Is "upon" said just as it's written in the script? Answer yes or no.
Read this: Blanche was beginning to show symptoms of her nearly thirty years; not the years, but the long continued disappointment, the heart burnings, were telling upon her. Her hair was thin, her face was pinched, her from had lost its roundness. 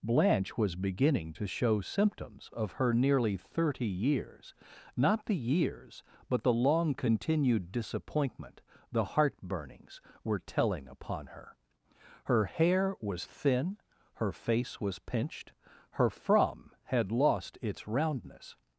yes